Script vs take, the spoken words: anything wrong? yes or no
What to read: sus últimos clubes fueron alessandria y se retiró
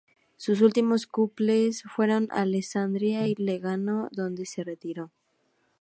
yes